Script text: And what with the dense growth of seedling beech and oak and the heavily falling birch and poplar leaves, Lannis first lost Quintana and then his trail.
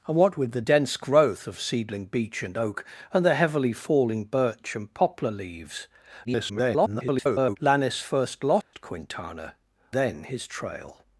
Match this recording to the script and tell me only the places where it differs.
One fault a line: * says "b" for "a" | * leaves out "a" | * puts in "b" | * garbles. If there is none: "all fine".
* garbles
* leaves out "and"